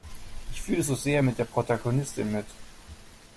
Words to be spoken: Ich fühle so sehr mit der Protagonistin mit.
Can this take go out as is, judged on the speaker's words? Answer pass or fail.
pass